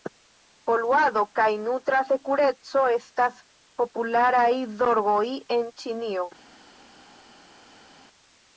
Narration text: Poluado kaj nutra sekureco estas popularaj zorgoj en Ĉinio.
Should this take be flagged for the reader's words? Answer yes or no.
no